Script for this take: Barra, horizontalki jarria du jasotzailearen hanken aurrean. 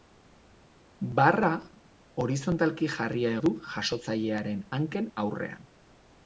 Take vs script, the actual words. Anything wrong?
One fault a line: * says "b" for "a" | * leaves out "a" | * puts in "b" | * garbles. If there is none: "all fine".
all fine